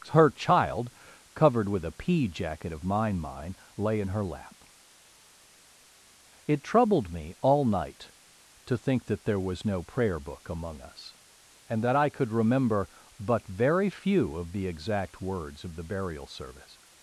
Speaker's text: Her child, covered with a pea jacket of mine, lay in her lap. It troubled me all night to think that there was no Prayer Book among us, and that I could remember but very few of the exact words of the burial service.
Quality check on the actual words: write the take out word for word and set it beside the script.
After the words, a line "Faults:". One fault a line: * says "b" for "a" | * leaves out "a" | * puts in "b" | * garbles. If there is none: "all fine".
Her child, covered with a pea jacket of mine mine, lay in her lap. It troubled me all night to think that there was no Prayer Book among us, and that I could remember but very few of the exact words of the burial service.
Faults:
* puts in "mine"